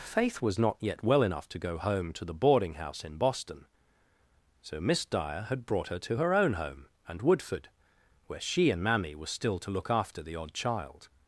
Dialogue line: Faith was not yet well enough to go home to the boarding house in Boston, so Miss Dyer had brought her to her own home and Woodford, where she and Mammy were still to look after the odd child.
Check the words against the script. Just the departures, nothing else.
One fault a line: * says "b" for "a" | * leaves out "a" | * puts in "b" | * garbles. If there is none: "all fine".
all fine